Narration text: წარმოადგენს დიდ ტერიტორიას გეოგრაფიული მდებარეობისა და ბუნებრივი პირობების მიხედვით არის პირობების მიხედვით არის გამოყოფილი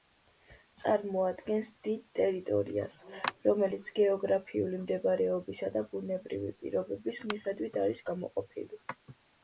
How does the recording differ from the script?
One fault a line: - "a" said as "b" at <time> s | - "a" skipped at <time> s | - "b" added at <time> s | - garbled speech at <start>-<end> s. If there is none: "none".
- "რომელიც" added at 3.5 s
- "პირობების მიხედვით არის" skipped at 8.1 s